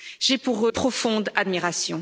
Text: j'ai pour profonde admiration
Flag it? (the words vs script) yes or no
no